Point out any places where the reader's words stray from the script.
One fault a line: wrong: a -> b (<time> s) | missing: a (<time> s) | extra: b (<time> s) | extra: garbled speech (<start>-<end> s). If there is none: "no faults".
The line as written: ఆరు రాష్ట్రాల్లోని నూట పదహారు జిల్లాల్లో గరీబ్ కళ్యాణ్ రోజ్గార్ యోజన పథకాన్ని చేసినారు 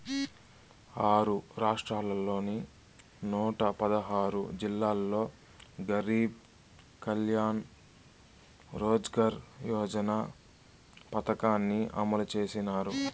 extra: అమలు (11.9 s)